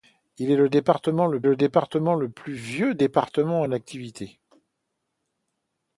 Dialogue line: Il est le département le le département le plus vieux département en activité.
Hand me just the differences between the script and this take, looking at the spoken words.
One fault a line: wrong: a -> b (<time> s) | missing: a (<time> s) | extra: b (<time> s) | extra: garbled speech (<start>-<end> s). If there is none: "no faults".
no faults